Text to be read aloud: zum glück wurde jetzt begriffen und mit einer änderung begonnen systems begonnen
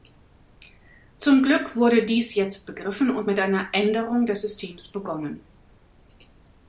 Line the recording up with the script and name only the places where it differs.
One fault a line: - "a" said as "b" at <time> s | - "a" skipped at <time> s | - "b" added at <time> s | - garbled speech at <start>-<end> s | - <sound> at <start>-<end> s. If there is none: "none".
- "dies" added at 2.0 s
- "begonnen" said as "des" at 4.3 s